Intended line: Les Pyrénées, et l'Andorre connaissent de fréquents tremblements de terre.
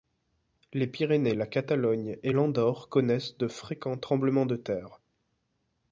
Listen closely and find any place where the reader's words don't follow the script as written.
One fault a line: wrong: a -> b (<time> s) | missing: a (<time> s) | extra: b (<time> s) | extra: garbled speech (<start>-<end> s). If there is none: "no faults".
extra: la Catalogne (1.3 s)